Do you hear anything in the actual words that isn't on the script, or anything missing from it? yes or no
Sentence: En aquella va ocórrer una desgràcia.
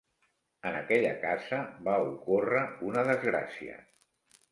yes